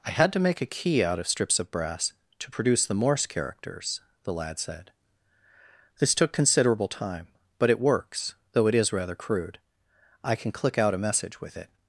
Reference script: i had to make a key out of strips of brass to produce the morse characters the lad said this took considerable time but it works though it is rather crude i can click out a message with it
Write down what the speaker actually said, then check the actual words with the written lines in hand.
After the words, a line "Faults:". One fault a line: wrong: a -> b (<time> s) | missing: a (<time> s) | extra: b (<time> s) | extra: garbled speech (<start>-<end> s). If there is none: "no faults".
i had to make a key out of strips of brass to produce the morse characters the lad said this took considerable time but it works though it is rather crude i can click out a message with it
Faults:
no faults